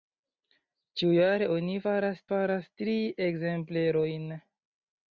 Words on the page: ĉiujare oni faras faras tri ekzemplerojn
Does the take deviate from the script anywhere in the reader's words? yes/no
no